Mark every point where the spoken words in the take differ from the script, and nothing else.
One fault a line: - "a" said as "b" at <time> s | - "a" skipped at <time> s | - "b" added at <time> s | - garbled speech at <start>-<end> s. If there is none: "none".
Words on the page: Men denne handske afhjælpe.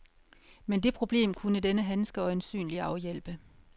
- "det problem kunne" added at 0.8 s
- "øjensynlig" added at 2.2 s